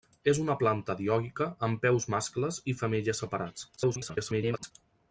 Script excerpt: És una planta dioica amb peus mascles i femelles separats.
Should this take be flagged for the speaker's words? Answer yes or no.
yes